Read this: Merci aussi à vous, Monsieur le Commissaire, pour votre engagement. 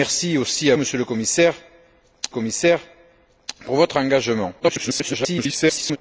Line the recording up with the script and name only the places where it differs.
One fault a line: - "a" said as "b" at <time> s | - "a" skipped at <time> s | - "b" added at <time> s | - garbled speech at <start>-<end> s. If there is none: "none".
- "vous" skipped at 0.8 s
- "Commissaire" added at 2.3 s
- garbled speech at 4.6-6.0 s